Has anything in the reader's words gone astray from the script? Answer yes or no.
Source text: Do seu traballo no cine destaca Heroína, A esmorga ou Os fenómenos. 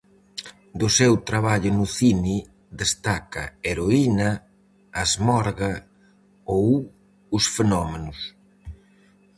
no